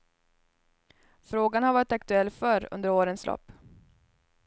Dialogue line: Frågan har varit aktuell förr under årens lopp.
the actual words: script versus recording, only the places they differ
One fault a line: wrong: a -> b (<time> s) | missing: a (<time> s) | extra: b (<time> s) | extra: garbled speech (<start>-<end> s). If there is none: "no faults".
no faults